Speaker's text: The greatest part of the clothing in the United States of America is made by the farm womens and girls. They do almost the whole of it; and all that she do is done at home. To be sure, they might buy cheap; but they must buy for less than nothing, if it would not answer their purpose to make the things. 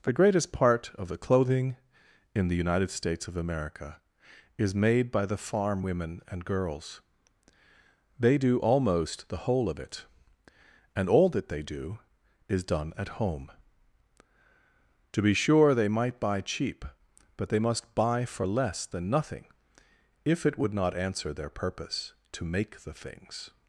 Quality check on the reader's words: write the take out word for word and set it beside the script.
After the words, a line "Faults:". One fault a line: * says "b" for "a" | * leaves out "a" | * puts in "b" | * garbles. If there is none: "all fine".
The greatest part of the clothing in the United States of America is made by the farm women and girls. They do almost the whole of it; and all that they do is done at home. To be sure, they might buy cheap; but they must buy for less than nothing, if it would not answer their purpose to make the things.
Faults:
* says "women" for "womens"
* says "they" for "she"